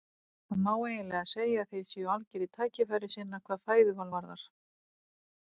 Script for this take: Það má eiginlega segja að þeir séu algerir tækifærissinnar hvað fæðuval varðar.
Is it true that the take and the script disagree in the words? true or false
false